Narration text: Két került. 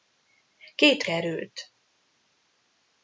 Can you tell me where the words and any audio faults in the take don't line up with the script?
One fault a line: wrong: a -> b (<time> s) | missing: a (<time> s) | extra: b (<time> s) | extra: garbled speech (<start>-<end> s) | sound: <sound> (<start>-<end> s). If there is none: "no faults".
no faults